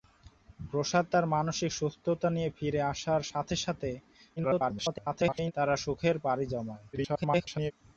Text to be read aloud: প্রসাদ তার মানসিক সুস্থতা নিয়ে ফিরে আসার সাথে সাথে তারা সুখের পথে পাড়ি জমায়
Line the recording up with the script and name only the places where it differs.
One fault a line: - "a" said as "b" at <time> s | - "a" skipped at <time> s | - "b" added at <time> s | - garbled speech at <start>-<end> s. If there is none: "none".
- garbled speech at 4.4-5.5 s
- "পথে" skipped at 6.2 s
- garbled speech at 6.9-7.7 s